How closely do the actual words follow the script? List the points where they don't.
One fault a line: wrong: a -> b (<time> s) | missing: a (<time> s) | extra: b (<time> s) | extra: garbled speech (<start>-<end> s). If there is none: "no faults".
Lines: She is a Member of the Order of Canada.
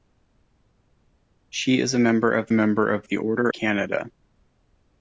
extra: Member of (2.5 s)
missing: of (3.5 s)